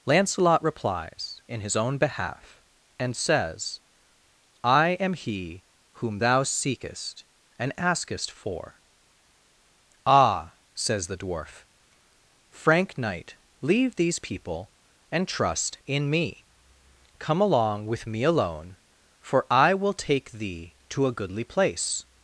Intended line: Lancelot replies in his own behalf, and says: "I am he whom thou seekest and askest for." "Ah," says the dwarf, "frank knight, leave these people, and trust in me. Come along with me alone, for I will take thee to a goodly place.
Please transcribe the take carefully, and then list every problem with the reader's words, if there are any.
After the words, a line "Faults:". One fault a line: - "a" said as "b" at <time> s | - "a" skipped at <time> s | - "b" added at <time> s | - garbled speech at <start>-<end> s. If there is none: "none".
Lancelot replies in his own behalf, and says: "I am he whom thou seekest and askest for." "Ah," says the dwarf, "frank knight, leave these people, and trust in me. Come along with me alone, for I will take thee to a goodly place.
Faults:
none